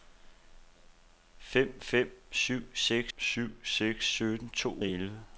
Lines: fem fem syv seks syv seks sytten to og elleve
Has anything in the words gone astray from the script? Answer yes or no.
no